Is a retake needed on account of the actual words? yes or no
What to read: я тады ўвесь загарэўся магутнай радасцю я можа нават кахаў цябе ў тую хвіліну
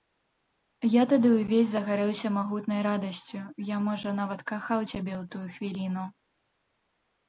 no